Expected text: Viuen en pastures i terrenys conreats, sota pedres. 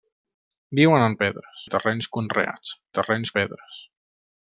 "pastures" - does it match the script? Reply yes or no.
no